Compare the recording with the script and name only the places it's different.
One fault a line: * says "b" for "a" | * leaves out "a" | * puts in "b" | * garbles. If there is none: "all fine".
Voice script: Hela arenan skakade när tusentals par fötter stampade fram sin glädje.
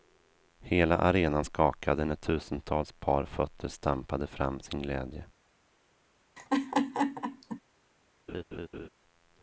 all fine